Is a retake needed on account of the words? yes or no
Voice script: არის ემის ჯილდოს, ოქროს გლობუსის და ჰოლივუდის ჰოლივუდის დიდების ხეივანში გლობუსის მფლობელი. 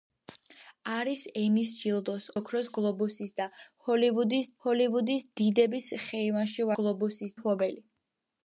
no